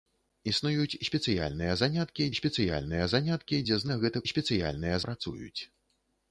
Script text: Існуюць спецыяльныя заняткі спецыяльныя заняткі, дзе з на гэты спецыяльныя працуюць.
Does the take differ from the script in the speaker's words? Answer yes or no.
no